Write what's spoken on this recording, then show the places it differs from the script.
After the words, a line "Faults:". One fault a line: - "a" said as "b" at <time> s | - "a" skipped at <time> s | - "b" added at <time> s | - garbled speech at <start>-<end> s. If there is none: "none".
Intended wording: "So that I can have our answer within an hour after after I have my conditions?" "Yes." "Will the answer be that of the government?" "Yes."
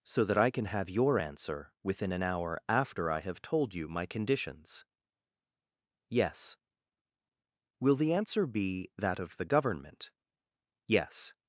"So that I can have your answer within an hour after I have told you my conditions?" "Yes." "Will the answer be that of the government?" "Yes."
Faults:
- "our" said as "your" at 0.9 s
- "after" skipped at 3.1 s
- "told you" added at 3.4 s